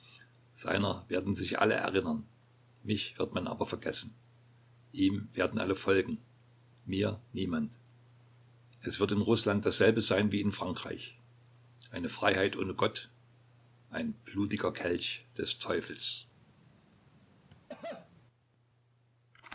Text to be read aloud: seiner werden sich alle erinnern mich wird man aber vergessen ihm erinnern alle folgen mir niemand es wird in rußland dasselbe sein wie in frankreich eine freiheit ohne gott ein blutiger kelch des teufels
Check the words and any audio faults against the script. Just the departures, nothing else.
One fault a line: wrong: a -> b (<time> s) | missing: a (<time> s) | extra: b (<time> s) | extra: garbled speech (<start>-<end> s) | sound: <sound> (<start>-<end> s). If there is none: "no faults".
wrong: erinnern -> werden (5.3 s)
sound: cough (17.5-18.1 s)